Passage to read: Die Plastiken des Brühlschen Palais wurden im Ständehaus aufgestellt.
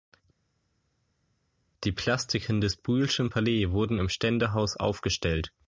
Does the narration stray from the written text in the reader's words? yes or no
no